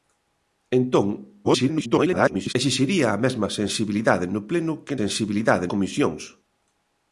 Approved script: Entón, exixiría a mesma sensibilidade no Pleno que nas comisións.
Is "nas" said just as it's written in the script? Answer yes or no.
no